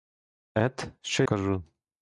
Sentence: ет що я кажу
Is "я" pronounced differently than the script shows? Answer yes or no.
yes